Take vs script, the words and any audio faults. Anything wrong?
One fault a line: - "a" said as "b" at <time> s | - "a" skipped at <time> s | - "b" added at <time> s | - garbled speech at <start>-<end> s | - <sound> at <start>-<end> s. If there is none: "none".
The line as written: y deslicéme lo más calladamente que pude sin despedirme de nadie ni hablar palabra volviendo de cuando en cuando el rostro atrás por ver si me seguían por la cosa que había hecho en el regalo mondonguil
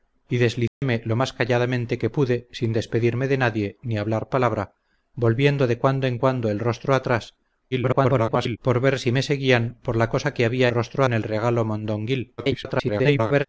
- dropout at 0.7-0.8 s
- garbled speech at 7.7-8.6 s
- "hecho" said as "rostro" at 10.7 s
- garbled speech at 12.4-13.5 s